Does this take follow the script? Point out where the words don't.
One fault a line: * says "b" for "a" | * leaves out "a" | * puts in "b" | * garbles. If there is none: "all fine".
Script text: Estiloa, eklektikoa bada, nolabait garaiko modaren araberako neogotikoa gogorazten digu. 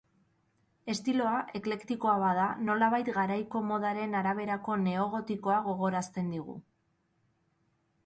all fine